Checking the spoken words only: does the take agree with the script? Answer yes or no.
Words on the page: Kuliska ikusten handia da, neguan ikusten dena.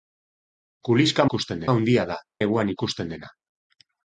yes